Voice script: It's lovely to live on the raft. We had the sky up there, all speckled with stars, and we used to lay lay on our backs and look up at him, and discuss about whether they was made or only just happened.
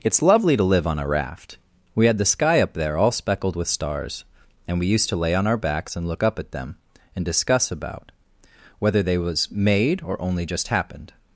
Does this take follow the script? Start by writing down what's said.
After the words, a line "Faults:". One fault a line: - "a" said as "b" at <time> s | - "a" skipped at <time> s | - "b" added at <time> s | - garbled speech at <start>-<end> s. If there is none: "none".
It's lovely to live on a raft. We had the sky up there, all speckled with stars, and we used to lay on our backs and look up at them, and discuss about whether they was made or only just happened.
Faults:
- "the" said as "a" at 1.0 s
- "lay" skipped at 5.3 s
- "him" said as "them" at 6.5 s